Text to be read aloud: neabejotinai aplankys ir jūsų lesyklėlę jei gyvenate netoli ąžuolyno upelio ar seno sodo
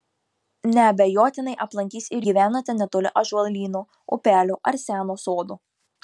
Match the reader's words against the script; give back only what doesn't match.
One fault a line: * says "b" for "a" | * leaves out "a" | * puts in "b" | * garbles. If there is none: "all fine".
* leaves out "jūsų lesyklėlę jei"